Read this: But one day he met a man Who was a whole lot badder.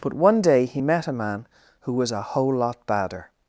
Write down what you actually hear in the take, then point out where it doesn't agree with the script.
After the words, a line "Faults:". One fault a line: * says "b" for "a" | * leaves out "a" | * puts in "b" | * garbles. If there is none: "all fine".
But one day he met a man Who was a whole lot badder.
Faults:
all fine